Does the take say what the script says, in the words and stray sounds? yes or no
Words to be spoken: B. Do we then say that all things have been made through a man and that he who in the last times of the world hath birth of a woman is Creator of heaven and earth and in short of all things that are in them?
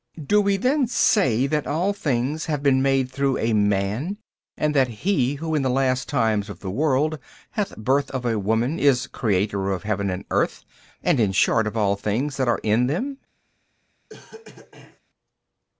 no